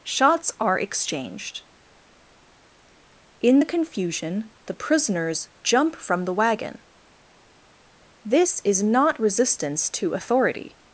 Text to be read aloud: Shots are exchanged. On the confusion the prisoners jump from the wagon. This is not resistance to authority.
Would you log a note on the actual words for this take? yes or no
yes